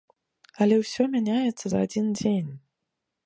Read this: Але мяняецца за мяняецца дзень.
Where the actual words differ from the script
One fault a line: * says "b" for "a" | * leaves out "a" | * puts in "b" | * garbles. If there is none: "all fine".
* puts in "ўсё"
* says "адзін" for "мяняецца"